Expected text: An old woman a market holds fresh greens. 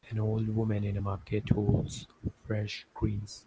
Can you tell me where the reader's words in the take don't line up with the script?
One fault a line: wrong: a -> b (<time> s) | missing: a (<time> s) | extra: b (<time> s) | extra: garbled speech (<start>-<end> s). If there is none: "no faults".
extra: in (0.8 s)